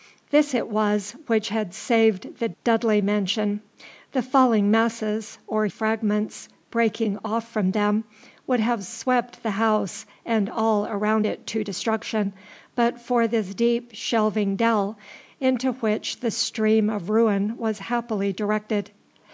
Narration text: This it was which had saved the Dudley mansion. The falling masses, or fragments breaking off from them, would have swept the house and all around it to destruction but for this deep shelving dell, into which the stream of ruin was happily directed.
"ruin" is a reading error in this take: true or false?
false